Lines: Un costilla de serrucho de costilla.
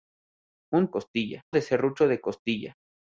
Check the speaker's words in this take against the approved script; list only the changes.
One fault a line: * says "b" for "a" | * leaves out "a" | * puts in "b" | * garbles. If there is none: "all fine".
all fine